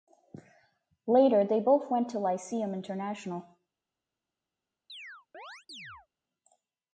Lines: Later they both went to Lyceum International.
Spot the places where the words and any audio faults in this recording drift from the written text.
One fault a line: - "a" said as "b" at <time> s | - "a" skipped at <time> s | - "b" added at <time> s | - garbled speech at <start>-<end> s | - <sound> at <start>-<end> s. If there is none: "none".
- chirp at 4.9-6.1 s